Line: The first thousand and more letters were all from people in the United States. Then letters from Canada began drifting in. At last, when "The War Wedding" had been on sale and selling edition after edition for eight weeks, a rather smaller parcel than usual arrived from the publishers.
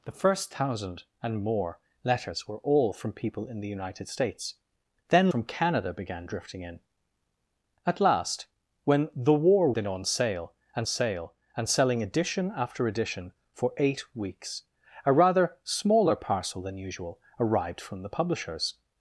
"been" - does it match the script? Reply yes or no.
no